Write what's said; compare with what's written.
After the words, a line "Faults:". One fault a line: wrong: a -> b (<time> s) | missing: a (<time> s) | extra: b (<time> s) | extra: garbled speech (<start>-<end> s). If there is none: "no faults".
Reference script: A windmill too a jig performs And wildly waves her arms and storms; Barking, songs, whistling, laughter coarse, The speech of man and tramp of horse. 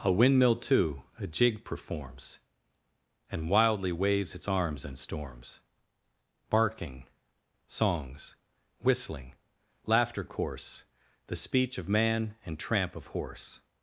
A windmill too a jig performs And wildly waves its arms and storms; Barking, songs, whistling, laughter coarse, The speech of man and tramp of horse.
Faults:
wrong: her -> its (4.3 s)